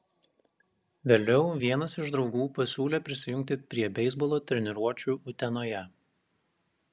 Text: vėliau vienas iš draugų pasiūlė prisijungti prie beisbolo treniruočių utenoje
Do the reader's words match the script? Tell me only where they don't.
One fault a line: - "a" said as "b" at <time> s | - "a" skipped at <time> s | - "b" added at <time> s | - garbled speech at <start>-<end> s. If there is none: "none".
none